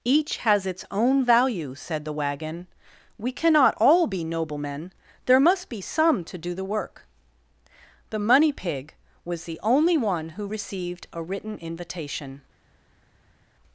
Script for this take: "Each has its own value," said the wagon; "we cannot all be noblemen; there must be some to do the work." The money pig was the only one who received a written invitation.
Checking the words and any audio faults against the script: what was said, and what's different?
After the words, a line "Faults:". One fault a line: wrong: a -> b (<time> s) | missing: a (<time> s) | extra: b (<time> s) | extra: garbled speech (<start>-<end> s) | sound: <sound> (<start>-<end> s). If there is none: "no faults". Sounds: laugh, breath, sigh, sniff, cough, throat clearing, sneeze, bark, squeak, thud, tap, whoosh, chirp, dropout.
"Each has its own value," said the wagon; "we cannot all be noblemen; there must be some to do the work." The money pig was the only one who received a written invitation.
Faults:
no faults